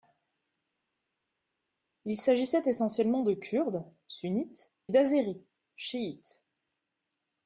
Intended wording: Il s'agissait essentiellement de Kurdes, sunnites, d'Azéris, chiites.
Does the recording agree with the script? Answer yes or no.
yes